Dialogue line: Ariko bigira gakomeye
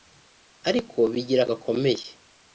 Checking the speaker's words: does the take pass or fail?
pass